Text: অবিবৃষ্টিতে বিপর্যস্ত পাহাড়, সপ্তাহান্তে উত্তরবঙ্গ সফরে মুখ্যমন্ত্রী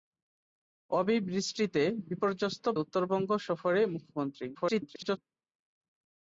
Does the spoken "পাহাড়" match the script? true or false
false